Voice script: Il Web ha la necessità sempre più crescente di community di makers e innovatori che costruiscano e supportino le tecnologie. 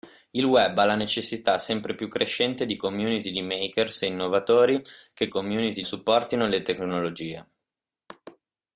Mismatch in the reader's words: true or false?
true